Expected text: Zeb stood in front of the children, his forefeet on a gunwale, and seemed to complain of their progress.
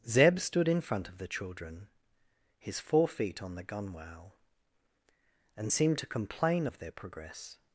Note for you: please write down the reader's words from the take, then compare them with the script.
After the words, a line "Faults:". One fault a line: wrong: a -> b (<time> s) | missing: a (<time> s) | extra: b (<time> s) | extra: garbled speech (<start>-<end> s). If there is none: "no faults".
Zeb stood in front of the children, his forefeet on the gunwale, and seemed to complain of their progress.
Faults:
wrong: a -> the (3.5 s)